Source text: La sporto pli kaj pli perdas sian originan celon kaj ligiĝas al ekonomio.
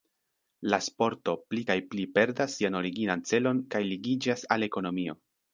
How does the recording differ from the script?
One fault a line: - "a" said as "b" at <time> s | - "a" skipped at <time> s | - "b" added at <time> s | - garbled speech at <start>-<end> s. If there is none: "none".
none